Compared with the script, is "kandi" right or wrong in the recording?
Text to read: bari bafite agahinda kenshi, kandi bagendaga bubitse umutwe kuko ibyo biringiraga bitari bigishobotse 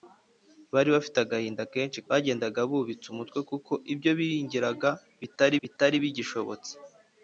wrong